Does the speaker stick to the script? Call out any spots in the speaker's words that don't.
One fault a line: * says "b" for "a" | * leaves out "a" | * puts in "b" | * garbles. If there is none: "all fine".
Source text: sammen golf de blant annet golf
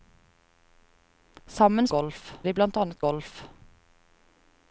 all fine